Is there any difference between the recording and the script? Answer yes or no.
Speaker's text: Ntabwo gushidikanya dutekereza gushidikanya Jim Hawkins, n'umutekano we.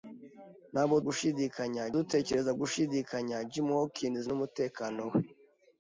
no